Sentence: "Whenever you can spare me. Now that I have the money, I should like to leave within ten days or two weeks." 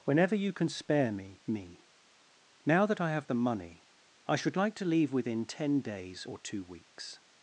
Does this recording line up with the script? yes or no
no